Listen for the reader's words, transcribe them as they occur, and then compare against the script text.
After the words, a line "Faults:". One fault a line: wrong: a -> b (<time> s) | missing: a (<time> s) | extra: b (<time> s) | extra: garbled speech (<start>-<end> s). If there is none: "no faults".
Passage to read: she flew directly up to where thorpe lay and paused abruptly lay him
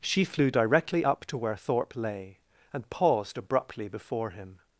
she flew directly up to where thorpe lay and paused abruptly before him
Faults:
wrong: lay -> before (3.9 s)